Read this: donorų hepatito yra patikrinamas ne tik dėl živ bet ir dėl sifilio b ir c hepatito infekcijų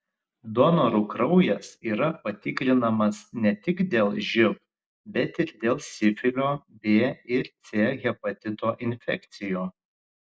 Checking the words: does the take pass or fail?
fail